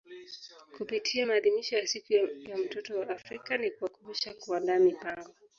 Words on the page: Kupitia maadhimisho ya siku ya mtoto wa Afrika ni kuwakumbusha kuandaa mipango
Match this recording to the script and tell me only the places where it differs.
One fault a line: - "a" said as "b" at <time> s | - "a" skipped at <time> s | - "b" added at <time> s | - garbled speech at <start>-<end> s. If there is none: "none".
none